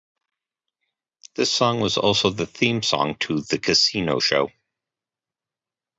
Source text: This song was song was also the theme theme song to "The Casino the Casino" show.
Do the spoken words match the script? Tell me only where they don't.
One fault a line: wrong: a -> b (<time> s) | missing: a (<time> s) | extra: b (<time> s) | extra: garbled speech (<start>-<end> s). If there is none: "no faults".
missing: song was (2.0 s)
missing: theme (2.8 s)
missing: the Casino (4.2 s)